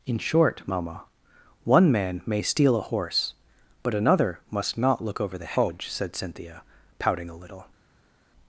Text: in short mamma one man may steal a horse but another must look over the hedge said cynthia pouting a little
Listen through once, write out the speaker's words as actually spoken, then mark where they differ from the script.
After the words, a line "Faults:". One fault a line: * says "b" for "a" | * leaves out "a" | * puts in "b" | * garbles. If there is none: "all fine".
in short mamma one man may steal a horse but another must not look over the hedge said cynthia pouting a little
Faults:
* puts in "not"